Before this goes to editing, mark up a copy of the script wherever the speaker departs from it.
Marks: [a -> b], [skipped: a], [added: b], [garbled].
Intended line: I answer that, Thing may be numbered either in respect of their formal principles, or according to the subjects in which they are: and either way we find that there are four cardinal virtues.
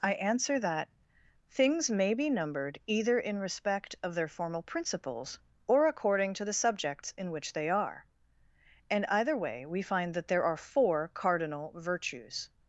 I answer that, [Thing -> Things] may be numbered either in respect of their formal principles, or according to the subjects in which they are: and either way we find that there are four cardinal virtues.